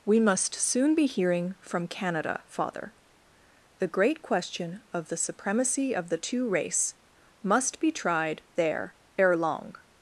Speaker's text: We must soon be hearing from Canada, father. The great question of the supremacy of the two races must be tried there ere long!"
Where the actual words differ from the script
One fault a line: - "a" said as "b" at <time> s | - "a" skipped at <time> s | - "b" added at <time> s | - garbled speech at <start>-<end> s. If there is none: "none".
- "races" said as "race" at 6.5 s